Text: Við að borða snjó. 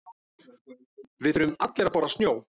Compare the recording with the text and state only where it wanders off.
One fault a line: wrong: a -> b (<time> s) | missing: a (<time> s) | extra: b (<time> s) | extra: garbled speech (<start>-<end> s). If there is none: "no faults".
extra: þurfum allir (1.4 s)